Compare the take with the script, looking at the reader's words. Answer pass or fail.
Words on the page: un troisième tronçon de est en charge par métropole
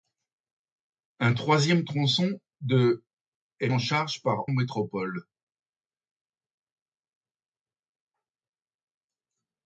pass